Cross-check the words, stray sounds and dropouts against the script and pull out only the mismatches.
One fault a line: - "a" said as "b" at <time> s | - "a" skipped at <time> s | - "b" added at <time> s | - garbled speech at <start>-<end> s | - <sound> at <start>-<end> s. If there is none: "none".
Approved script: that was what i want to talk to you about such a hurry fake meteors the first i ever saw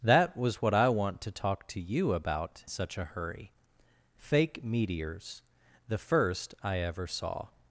none